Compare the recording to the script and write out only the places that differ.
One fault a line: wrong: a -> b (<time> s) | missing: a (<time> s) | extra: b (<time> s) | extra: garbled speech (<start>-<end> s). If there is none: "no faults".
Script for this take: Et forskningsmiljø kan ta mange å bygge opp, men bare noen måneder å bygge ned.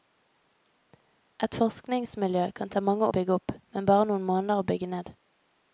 no faults